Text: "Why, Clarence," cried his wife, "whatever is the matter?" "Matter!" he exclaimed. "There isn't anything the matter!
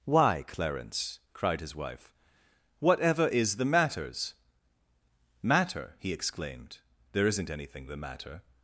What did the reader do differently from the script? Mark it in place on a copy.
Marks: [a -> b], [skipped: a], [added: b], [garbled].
"Why, Clarence," cried his wife, "whatever is the [matter?" -> matters] "Matter!" he exclaimed. "There isn't anything the matter!